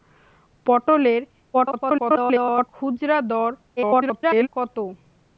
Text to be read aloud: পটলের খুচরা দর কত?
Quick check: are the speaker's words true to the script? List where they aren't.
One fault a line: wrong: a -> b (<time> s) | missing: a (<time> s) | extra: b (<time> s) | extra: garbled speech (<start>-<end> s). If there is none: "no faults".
extra: garbled speech (1.5-2.7 s)
extra: garbled speech (3.8-4.5 s)